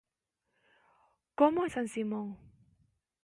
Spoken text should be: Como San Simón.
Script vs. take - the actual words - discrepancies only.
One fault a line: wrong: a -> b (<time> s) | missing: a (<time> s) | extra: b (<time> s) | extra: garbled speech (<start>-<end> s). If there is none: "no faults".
no faults